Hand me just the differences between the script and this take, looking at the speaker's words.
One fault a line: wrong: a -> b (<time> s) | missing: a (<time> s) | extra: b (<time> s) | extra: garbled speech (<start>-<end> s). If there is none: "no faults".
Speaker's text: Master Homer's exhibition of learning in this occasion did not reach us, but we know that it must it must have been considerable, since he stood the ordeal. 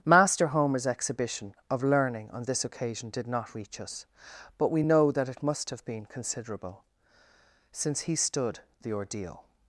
wrong: in -> on (2.3 s)
missing: it must (5.7 s)